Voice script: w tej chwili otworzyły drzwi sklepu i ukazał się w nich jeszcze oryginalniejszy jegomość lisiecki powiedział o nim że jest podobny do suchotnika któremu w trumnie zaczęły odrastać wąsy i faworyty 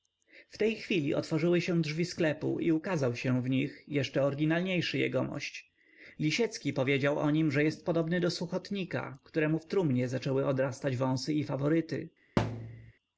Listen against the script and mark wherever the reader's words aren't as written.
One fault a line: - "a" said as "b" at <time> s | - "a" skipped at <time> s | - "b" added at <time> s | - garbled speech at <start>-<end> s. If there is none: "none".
- "się" added at 1.6 s